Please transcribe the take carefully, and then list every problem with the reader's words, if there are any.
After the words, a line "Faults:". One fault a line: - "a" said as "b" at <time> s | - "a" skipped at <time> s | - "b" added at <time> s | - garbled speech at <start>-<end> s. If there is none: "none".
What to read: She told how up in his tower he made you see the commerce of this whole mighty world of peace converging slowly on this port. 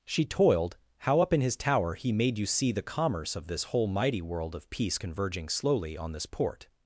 She toiled how up in his tower he made you see the commerce of this whole mighty world of peace converging slowly on this port.
Faults:
- "told" said as "toiled" at 0.2 s